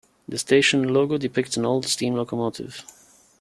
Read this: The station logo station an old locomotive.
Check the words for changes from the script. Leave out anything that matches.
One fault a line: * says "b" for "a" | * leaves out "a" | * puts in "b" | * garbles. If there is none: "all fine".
* says "depicts" for "station"
* puts in "steam"